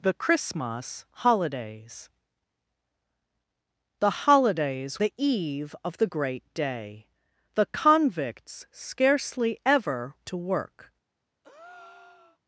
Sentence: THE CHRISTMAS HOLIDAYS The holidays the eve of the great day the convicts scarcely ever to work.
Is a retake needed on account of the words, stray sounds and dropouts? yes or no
yes